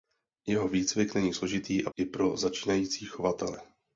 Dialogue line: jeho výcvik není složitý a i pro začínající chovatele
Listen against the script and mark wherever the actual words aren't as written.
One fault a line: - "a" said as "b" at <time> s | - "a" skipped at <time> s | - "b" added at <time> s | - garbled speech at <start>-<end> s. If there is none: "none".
none